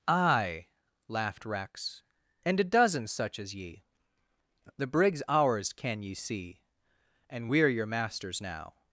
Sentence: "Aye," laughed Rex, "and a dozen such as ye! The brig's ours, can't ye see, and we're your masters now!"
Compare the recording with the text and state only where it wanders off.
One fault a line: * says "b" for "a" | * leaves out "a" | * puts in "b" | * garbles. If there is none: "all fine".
* says "can" for "can't"